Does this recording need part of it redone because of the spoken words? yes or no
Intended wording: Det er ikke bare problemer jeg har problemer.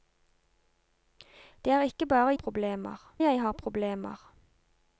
no